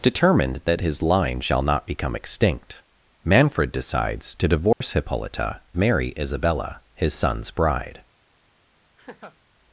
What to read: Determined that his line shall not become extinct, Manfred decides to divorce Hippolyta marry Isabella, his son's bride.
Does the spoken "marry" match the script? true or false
true